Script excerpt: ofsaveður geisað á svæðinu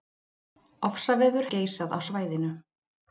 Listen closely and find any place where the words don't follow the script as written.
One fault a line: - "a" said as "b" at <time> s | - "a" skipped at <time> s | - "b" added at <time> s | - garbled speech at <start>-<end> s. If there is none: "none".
none